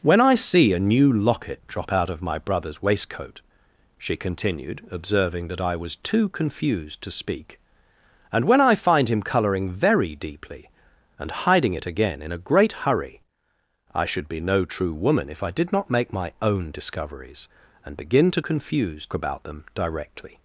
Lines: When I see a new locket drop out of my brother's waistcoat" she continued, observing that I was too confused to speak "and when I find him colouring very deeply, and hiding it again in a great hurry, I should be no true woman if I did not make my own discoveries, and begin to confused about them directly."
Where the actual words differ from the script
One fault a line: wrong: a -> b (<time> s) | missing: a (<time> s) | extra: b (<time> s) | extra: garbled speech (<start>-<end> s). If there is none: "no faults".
no faults